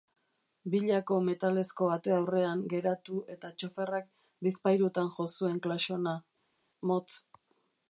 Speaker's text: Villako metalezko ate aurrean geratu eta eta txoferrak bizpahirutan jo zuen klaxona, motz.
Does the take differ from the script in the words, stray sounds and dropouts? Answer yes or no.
yes